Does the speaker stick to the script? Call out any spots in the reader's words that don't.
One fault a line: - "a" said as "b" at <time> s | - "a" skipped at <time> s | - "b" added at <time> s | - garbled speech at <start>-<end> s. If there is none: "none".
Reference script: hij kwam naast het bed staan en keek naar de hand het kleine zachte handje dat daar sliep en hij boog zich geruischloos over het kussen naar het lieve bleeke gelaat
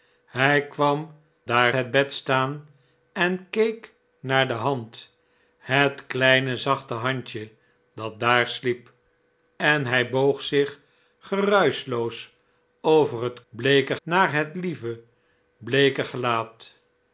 - "naast" said as "daar" at 1.5 s
- "kussen" said as "bleeke" at 13.5 s